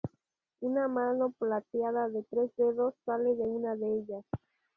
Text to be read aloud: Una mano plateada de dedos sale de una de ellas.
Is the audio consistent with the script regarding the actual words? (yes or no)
no